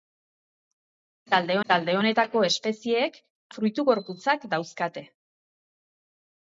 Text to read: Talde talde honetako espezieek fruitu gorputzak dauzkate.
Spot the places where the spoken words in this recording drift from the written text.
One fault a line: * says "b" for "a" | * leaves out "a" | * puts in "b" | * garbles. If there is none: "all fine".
all fine